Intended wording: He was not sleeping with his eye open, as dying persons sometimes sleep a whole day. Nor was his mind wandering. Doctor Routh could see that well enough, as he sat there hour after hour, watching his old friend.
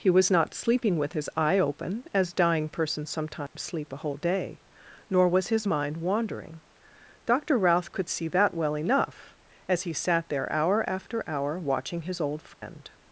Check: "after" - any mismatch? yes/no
no